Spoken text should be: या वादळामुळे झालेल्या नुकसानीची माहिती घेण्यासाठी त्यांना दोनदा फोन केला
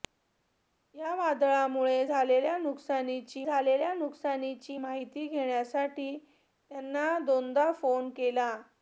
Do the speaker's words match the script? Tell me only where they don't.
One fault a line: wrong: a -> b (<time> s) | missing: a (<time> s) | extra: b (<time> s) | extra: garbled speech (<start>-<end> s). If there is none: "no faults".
extra: झालेल्या नुकसानीची (3.4 s)